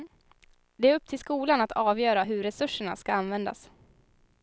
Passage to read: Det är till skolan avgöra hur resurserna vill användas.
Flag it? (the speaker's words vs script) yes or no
yes